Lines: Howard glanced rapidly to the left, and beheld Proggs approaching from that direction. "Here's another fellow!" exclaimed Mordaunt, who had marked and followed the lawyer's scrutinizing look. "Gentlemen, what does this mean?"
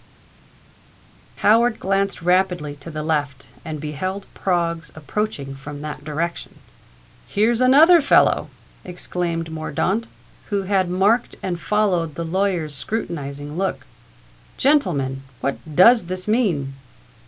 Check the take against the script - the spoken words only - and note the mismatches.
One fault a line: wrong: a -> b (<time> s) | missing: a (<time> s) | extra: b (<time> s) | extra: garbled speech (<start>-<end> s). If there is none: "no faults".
no faults